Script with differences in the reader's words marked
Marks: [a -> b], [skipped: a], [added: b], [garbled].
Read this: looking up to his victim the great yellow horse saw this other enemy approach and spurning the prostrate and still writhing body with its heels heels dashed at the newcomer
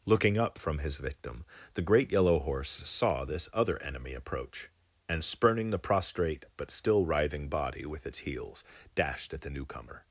looking up [to -> from] his victim the great yellow horse saw this other enemy approach and spurning the prostrate [and -> but] still writhing body with its heels [skipped: heels] dashed at the newcomer